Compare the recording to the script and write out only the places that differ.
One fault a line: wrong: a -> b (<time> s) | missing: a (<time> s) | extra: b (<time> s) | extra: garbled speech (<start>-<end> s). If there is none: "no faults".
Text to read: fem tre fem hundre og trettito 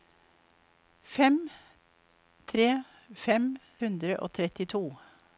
no faults